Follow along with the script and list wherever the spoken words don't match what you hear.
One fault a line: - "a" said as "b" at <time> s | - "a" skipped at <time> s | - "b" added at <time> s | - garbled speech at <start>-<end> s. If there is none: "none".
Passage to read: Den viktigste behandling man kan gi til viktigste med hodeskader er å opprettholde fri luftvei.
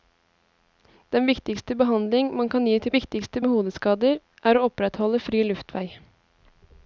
none